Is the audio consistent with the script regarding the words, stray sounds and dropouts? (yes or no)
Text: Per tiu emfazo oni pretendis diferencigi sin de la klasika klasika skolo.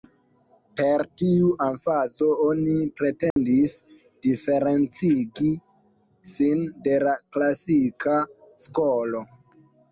no